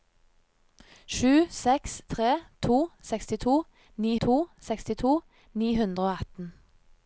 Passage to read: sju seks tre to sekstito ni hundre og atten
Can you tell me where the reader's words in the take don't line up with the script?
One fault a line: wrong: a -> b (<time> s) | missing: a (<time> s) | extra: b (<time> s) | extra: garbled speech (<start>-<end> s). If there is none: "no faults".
extra: to sekstito ni (4.3 s)